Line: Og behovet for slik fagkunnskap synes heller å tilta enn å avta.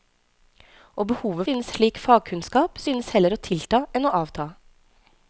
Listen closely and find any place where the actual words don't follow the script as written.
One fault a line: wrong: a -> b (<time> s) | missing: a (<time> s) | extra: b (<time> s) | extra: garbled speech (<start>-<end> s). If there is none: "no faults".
wrong: for -> synes (1.4 s)